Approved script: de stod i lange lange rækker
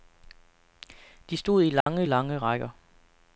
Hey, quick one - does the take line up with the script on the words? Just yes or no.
yes